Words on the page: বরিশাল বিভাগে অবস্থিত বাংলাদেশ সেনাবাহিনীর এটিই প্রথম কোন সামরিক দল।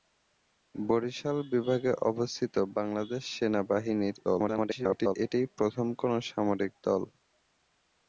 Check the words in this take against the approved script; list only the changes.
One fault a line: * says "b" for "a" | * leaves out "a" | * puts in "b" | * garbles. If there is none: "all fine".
* garbles